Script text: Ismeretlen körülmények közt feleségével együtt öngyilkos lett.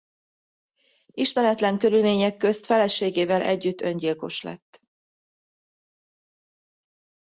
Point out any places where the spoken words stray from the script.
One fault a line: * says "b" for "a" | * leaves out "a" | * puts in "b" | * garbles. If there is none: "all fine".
all fine